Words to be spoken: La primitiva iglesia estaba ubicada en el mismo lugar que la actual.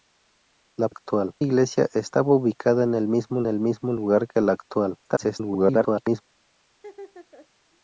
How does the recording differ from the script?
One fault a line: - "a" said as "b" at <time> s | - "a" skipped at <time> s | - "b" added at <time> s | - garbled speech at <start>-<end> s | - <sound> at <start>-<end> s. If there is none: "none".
- "primitiva" said as "actual" at 0.9 s
- "el mismo" added at 3.5 s
- garbled speech at 5.0-6.2 s
- laugh at 6.7-7.5 s